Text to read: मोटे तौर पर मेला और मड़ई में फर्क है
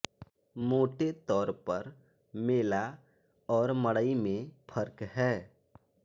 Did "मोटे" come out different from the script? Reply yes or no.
no